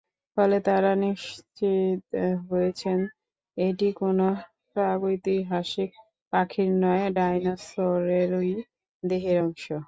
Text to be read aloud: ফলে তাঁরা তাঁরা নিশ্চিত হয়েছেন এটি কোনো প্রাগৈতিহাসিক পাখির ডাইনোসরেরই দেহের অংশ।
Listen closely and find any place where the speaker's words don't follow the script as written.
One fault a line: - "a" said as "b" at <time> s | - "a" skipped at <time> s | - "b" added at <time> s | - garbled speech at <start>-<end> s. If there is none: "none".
- "তাঁরা" skipped at 0.9 s
- "নয়" added at 6.8 s